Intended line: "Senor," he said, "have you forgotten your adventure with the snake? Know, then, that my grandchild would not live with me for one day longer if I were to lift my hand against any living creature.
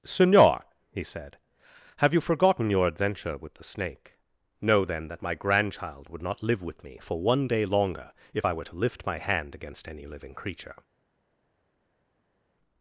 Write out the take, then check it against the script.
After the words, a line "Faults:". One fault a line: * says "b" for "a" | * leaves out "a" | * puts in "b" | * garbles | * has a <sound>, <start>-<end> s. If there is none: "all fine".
"Senor," he said, "have you forgotten your adventure with the snake? Know, then, that my grandchild would not live with me for one day longer if I were to lift my hand against any living creature.
Faults:
all fine